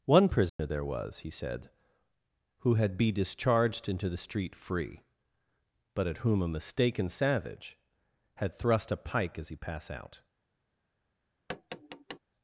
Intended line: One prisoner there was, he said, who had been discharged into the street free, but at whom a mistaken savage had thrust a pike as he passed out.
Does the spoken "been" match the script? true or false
false